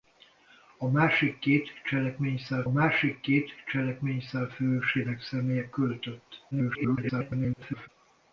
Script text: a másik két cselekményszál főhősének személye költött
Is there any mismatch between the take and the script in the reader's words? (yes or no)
yes